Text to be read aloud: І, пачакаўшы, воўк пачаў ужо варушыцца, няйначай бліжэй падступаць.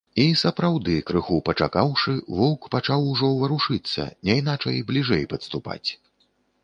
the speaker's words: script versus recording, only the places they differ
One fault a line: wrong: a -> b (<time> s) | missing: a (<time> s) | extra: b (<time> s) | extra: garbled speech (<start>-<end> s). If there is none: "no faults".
extra: сапраўды крыху (0.4 s)